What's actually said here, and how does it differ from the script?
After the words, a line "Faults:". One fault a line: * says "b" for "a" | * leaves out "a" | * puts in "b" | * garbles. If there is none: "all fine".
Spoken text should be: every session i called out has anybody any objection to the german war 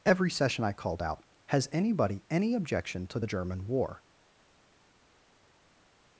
every session i called out has anybody any objection to the german war
Faults:
all fine